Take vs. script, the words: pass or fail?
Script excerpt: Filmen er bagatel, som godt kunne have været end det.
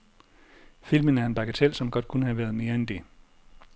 fail